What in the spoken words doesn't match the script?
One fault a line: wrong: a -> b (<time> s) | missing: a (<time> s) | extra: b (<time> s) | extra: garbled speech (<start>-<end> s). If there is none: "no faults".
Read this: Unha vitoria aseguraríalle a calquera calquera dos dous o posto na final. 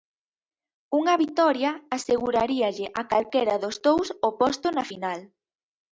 missing: calquera (3.6 s)